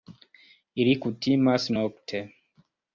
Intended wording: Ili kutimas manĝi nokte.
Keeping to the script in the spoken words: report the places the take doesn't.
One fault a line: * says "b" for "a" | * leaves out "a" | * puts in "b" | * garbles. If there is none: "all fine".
* leaves out "manĝi"